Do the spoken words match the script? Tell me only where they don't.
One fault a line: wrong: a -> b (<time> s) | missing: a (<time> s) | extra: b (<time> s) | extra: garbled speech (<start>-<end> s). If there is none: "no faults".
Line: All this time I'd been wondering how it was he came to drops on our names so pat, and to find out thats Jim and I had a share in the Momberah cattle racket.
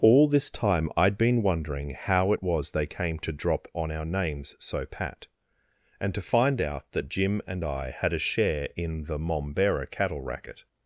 wrong: he -> they (2.7 s)
wrong: drops -> drop (3.3 s)
wrong: thats -> that (6.9 s)